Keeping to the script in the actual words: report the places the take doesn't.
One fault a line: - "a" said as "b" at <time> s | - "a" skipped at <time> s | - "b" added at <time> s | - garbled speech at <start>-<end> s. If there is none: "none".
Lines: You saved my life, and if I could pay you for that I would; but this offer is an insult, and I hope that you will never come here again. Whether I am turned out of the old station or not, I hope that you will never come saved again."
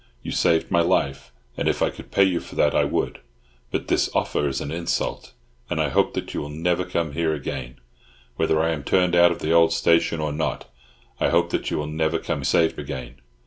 none